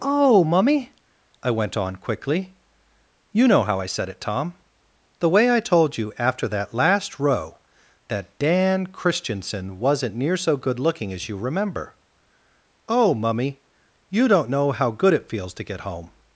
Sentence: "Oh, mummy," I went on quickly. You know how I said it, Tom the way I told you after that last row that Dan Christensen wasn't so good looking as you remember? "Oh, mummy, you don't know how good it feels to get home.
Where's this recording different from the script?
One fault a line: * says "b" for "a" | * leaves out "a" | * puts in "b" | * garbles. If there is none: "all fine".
* puts in "near"